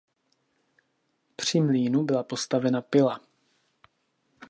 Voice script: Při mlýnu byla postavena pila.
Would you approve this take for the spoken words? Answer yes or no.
yes